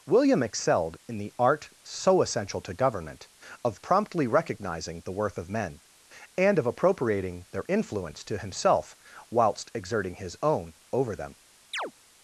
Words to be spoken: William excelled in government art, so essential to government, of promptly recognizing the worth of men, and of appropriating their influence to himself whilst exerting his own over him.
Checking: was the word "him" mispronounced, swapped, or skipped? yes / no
yes